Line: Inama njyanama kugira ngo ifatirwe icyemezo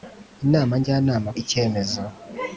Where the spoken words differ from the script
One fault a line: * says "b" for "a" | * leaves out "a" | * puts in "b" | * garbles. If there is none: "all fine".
* leaves out "kugira ngo ifatirwe"